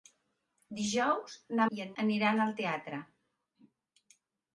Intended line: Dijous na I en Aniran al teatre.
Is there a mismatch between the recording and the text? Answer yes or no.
no